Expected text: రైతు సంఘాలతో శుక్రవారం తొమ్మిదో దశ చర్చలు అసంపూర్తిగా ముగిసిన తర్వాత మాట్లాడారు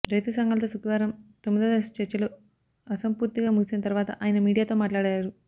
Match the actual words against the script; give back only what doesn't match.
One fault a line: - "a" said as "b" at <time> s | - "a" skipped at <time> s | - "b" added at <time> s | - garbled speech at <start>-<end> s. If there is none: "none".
- "ఆయన మీడియాతో" added at 4.2 s